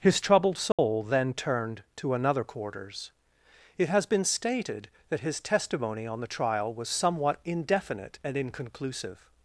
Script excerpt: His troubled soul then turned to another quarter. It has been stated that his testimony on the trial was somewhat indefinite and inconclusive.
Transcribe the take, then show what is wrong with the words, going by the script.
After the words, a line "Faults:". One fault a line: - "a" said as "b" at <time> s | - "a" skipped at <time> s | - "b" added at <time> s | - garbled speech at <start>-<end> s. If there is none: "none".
His troubled soul then turned to another quarters. It has been stated that his testimony on the trial was somewhat indefinite and inconclusive.
Faults:
- "quarter" said as "quarters" at 2.4 s